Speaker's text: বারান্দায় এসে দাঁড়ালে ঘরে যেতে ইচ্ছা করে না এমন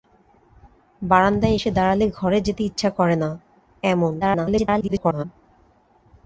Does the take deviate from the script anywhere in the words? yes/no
yes